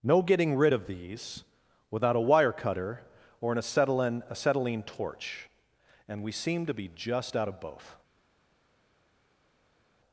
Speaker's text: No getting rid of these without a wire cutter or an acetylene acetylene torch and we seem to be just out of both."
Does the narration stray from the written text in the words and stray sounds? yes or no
no